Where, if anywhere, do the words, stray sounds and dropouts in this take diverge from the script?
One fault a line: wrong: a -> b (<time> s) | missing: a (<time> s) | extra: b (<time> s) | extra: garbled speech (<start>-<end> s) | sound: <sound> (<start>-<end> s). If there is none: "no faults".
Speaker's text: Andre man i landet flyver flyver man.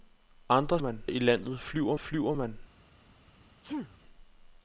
sound: sneeze (3.6-4.0 s)